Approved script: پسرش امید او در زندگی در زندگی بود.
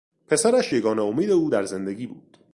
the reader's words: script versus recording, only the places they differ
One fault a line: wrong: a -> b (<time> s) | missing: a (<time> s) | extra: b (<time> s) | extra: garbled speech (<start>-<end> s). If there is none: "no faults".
extra: یگانه (0.7 s)
missing: در زندگی (2.1 s)